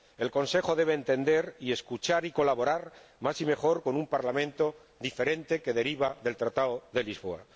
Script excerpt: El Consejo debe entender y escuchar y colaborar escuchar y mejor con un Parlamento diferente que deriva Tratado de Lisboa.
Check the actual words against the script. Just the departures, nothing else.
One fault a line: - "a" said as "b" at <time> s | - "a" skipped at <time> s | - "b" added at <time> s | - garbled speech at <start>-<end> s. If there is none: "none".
- "escuchar" said as "más" at 3.2 s
- "del" added at 6.2 s